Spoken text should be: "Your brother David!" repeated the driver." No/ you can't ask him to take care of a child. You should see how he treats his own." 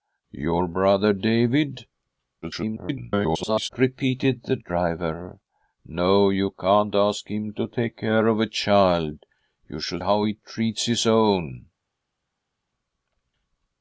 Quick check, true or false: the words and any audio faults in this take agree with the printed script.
false